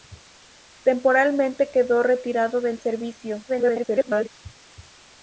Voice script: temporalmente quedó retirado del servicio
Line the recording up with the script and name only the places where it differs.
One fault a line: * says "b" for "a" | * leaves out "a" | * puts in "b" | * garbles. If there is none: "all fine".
* garbles